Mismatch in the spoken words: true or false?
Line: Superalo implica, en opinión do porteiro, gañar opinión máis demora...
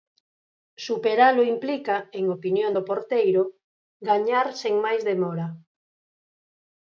true